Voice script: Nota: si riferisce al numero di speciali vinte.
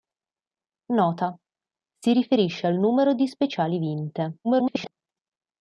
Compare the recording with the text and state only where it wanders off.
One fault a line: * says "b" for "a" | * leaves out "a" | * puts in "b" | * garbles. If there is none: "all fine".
* garbles